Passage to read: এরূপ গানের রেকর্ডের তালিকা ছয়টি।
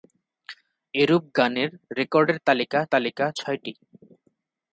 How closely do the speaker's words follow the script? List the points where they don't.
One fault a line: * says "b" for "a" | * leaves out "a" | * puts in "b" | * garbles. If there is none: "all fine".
* puts in "তালিকা"